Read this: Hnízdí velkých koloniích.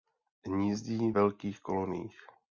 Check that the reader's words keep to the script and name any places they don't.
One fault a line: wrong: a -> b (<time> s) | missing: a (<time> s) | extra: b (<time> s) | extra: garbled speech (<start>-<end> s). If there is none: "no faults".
no faults